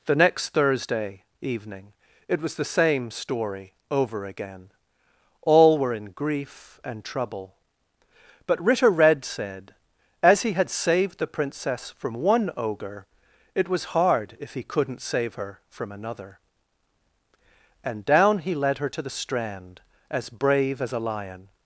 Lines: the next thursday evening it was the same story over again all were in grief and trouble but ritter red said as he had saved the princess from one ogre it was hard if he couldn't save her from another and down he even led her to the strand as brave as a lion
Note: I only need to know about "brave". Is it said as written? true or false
true